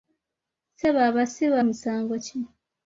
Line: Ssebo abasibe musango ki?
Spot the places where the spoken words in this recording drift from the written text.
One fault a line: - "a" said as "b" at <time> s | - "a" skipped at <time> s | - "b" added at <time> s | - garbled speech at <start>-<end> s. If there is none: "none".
none